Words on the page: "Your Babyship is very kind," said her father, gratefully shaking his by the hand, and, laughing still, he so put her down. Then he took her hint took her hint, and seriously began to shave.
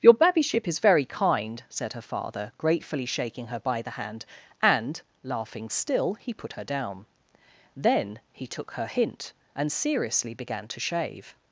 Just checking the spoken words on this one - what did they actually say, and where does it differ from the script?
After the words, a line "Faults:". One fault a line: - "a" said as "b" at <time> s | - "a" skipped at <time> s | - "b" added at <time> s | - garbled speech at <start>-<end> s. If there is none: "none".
"Your Babyship is very kind," said her father, gratefully shaking her by the hand, and, laughing still, he put her down. Then he took her hint, and seriously began to shave.
Faults:
- "his" said as "her" at 3.5 s
- "so" skipped at 6.3 s
- "took her hint" skipped at 9.3 s